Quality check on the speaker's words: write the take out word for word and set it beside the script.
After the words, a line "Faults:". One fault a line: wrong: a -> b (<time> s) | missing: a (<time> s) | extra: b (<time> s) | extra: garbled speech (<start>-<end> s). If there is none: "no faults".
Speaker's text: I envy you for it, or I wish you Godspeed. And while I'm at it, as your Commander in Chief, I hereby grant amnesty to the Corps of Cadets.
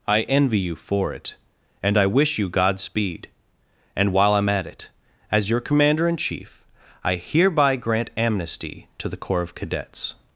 I envy you for it, and I wish you Godspeed. And while I'm at it, as your Commander in Chief, I hereby grant amnesty to the Corps of Cadets.
Faults:
wrong: or -> and (1.8 s)